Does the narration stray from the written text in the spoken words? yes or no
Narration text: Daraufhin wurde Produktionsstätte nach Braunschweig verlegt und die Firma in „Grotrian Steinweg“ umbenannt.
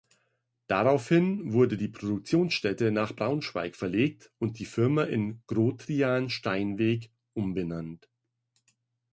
yes